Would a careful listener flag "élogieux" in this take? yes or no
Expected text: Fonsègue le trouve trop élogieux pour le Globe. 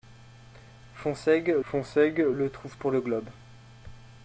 yes